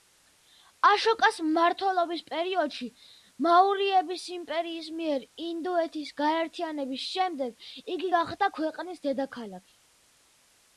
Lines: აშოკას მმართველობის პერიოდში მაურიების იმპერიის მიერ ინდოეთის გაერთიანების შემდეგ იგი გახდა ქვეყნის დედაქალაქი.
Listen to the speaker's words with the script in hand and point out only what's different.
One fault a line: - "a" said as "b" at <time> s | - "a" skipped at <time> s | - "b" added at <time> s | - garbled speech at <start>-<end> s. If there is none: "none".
none